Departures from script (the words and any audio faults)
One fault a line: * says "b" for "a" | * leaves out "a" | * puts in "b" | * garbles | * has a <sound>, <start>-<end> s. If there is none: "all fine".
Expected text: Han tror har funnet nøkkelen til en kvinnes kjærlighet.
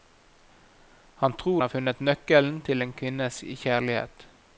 all fine